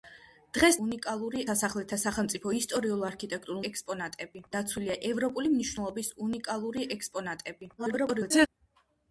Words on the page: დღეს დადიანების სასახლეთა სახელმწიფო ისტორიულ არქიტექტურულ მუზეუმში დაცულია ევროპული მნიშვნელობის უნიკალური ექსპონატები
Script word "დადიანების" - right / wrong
wrong